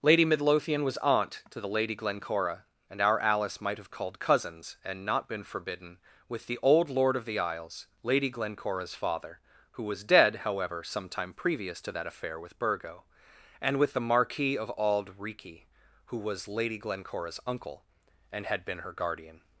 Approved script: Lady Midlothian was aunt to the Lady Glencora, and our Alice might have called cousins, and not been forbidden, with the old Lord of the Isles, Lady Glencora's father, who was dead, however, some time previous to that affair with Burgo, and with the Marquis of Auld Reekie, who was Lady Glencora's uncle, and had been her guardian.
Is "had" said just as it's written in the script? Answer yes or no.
yes